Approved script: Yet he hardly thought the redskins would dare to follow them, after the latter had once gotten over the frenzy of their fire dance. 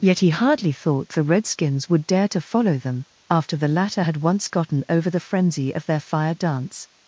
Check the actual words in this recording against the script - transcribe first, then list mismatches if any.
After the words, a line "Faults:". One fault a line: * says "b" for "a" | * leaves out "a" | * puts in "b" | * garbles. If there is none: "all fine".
Yet he hardly thought the redskins would dare to follow them, after the latter had once gotten over the frenzy of their fire dance.
Faults:
all fine